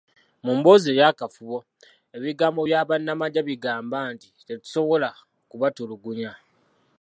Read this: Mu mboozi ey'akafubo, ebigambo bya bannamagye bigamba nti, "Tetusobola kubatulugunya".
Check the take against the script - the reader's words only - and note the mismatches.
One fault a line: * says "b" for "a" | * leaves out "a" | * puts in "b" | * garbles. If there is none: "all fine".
all fine